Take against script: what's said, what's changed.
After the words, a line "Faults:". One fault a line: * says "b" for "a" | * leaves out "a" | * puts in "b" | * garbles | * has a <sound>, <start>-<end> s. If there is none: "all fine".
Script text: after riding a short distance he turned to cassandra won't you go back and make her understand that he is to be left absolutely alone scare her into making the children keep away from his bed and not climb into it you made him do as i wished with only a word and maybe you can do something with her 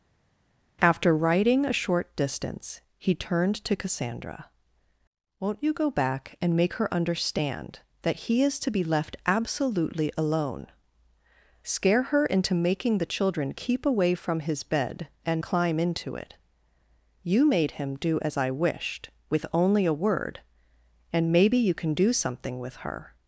after riding a short distance he turned to cassandra won't you go back and make her understand that he is to be left absolutely alone scare her into making the children keep away from his bed and climb into it you made him do as i wished with only a word and maybe you can do something with her
Faults:
* leaves out "not"